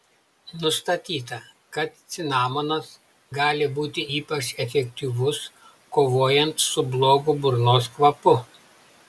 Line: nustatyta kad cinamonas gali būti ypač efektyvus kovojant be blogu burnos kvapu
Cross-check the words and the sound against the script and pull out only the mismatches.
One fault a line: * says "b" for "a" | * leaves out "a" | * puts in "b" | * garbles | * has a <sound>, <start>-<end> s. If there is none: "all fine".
* says "su" for "be"